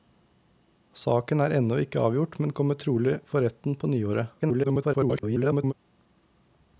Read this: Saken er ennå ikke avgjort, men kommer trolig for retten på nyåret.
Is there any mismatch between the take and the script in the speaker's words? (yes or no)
yes